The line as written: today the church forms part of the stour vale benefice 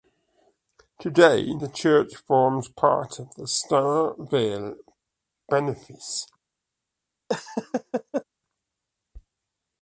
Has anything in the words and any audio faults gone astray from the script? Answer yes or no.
yes